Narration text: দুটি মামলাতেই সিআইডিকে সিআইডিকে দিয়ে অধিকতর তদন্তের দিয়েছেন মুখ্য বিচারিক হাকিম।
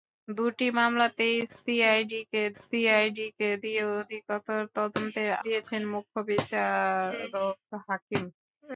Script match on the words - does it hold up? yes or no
yes